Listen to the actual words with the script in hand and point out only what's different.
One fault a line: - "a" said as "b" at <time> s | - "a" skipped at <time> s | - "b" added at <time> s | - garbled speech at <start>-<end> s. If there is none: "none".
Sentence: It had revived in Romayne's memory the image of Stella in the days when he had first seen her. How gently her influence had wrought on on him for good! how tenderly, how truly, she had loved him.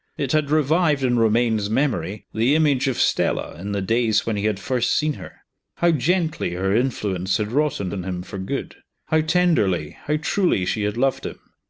none